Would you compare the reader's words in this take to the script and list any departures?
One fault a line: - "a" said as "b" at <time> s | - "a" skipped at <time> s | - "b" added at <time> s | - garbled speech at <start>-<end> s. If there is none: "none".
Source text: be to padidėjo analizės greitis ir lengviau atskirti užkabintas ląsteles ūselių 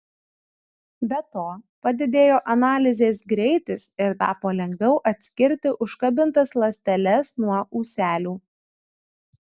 - "tapo" added at 4.2 s
- "nuo" added at 7.5 s